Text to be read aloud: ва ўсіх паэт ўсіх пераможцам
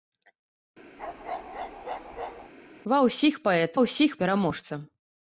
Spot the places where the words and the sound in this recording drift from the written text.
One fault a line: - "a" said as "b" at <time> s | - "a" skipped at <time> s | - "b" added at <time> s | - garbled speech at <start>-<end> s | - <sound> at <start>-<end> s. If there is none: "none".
- bark at 1.0-2.5 s